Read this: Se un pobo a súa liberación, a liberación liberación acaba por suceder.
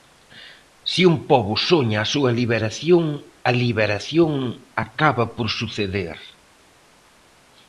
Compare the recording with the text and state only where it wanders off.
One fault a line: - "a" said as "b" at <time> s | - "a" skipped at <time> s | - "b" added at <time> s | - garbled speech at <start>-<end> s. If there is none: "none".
- "soña" added at 1.7 s
- "liberación" skipped at 4.3 s